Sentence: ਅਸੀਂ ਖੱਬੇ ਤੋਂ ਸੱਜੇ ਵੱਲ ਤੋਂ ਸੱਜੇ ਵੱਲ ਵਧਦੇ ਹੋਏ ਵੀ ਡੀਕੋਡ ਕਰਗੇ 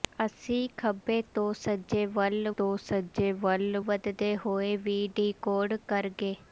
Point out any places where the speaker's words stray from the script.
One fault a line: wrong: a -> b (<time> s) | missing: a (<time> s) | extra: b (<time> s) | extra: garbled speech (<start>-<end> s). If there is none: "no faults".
no faults